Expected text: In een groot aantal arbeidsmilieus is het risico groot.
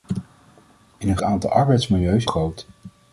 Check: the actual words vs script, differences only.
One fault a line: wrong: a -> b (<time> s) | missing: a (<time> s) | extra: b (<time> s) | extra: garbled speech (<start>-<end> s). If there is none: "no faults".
missing: groot (1.2 s)
missing: is het risico (2.3 s)